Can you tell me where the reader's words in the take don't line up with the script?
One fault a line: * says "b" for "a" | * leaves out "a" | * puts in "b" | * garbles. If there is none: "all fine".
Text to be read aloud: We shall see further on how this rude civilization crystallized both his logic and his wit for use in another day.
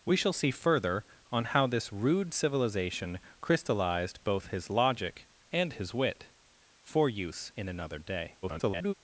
* garbles